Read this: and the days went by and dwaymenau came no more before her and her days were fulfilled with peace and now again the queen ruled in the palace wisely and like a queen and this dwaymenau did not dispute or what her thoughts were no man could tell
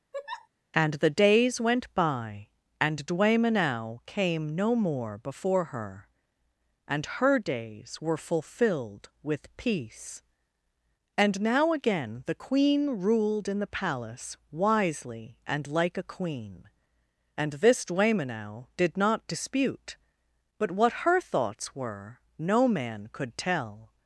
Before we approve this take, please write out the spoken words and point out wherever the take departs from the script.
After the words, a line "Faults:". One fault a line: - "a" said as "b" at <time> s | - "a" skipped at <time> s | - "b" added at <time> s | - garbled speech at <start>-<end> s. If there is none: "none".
and the days went by and dwaymenau came no more before her and her days were fulfilled with peace and now again the queen ruled in the palace wisely and like a queen and this dwaymenau did not dispute but what her thoughts were no man could tell
Faults:
- "or" said as "but" at 20.6 s